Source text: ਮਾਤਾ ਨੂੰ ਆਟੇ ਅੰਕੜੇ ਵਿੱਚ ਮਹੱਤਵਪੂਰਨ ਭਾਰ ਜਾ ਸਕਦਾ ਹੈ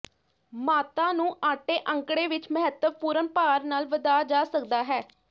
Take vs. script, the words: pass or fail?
fail